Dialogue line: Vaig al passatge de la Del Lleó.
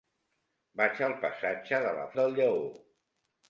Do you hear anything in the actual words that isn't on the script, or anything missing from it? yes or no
no